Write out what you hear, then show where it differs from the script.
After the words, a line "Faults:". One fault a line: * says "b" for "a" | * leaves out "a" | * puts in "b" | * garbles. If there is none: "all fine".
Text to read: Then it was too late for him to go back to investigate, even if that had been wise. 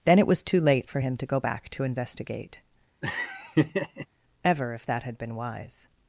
Then it was too late for him to go back to investigate, ever if that had been wise.
Faults:
* says "ever" for "even"